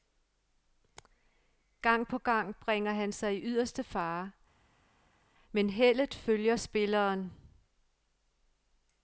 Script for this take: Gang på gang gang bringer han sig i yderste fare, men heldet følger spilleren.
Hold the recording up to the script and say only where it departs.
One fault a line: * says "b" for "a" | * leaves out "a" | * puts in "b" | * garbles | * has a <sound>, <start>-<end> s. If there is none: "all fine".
* leaves out "gang"